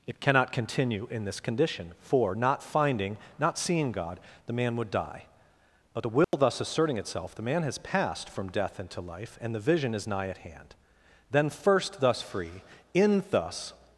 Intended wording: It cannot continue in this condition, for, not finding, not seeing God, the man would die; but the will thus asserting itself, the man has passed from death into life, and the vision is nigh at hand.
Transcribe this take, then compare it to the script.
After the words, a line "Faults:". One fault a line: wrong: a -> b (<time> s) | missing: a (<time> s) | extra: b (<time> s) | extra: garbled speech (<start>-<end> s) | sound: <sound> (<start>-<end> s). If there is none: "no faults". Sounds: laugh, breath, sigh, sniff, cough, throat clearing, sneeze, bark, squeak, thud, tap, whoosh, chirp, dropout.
It cannot continue in this condition, for, not finding, not seeing God, the man would die; but the will thus asserting itself, the man has passed from death into life, and the vision is nigh at hand. Then first, thus free, in thus
Faults:
sound: dropout (6.2-6.3 s)
extra: Then first thus free in thus (11.3 s)